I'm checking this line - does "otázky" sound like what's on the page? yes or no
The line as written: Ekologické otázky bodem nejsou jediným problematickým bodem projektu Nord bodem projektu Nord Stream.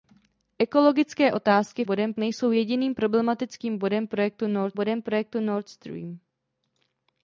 yes